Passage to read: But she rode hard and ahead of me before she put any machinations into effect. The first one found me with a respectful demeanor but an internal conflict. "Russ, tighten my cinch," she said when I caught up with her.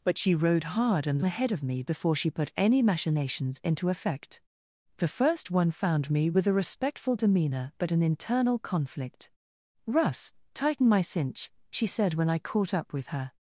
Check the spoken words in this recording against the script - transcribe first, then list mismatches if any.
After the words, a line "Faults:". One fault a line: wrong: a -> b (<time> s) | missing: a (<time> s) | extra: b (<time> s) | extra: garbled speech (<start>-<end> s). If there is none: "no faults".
But she rode hard and ahead of me before she put any machinations into effect. The first one found me with a respectful demeanor but an internal conflict. "Russ, tighten my cinch," she said when I caught up with her.
Faults:
no faults